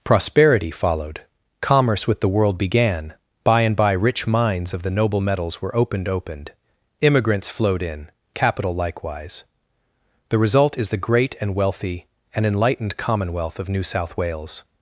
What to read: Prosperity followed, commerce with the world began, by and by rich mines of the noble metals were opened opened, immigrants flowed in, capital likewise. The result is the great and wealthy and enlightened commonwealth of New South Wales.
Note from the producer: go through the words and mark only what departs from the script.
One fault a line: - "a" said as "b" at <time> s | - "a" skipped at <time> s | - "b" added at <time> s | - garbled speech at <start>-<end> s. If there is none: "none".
none